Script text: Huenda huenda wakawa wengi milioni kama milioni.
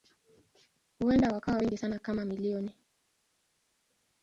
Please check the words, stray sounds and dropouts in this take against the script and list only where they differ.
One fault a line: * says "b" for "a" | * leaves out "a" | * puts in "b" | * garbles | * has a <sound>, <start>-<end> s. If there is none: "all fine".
* leaves out "huenda"
* says "sana" for "milioni"